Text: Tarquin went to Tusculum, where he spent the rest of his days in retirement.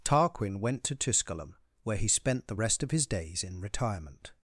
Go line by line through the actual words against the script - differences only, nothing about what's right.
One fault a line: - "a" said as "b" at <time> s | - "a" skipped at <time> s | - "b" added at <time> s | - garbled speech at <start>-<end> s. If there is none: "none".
none